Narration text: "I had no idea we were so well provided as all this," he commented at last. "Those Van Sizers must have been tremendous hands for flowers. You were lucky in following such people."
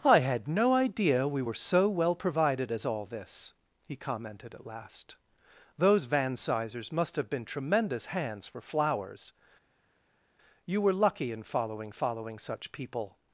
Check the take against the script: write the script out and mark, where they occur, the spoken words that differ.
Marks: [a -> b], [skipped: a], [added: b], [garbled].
"I had no idea we were so well provided as all this," he commented at last. "Those Van Sizers must have been tremendous hands for flowers. You were lucky in following [added: following] such people."